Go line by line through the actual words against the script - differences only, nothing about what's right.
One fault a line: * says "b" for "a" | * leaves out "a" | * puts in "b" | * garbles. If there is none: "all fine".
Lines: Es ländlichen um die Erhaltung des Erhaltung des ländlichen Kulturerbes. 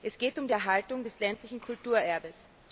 * says "geht" for "ländlichen"
* leaves out "Erhaltung des"